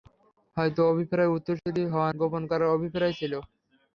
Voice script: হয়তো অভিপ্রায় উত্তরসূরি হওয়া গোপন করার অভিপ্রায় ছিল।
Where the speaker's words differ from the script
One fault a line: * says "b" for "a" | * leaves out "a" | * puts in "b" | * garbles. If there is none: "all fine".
all fine